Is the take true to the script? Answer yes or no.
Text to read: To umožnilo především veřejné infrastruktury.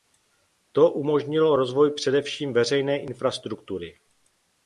no